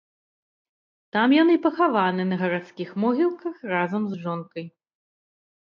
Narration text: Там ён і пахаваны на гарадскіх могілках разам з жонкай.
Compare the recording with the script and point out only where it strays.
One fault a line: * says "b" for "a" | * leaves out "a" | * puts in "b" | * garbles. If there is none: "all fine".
all fine